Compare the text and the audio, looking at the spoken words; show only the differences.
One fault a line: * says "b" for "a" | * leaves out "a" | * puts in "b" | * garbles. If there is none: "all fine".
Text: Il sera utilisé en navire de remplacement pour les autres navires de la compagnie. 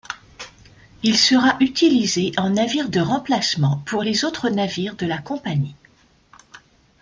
all fine